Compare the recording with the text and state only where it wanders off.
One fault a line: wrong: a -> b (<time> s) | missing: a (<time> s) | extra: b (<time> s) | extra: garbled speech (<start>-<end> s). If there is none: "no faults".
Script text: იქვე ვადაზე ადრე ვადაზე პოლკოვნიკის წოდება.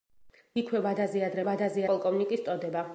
no faults